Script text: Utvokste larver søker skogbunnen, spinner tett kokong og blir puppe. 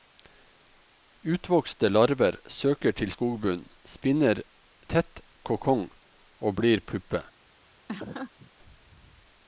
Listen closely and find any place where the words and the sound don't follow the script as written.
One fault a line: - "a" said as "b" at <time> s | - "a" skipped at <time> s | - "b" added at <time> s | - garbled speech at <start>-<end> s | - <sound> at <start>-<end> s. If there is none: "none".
- "til" added at 3.0 s
- laugh at 7.9-8.5 s